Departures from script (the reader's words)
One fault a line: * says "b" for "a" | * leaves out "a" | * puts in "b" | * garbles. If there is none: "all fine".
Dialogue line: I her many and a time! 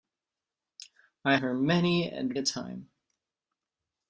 all fine